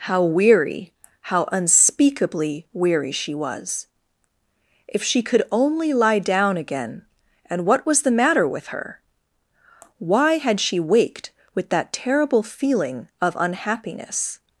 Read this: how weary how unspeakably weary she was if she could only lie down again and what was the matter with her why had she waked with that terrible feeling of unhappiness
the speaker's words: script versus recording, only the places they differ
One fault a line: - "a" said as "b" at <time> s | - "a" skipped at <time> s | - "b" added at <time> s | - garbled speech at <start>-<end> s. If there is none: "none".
none